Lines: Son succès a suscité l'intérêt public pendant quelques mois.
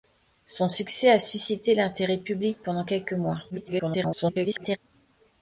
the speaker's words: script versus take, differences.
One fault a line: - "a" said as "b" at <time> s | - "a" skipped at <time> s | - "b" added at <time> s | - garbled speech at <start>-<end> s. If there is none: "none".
- garbled speech at 3.5-4.8 s